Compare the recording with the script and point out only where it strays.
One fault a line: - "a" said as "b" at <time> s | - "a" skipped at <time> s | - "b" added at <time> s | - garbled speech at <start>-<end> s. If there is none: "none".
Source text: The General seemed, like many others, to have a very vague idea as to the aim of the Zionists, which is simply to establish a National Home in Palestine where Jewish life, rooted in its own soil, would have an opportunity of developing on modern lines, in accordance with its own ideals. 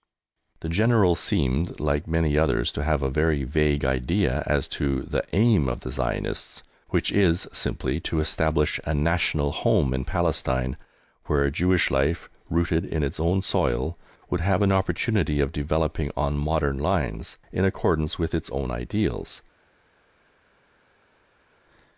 none